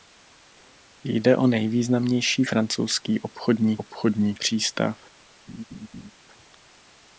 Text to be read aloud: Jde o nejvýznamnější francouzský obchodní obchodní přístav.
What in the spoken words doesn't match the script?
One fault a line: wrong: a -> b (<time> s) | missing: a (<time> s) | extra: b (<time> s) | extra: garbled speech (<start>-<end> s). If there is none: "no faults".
no faults